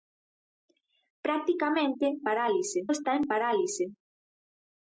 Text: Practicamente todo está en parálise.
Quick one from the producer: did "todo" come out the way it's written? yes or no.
no